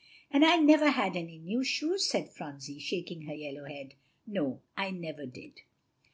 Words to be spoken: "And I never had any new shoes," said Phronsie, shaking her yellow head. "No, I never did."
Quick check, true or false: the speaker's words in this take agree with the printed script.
true